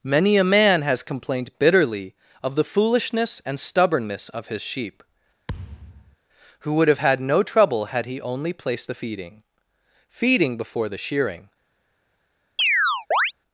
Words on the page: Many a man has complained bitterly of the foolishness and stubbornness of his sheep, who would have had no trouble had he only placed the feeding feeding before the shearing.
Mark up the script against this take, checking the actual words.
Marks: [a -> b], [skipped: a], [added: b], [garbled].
Many a man has complained bitterly of the foolishness and stubbornness of his sheep, who would have had no trouble had he only placed the feeding feeding before the shearing.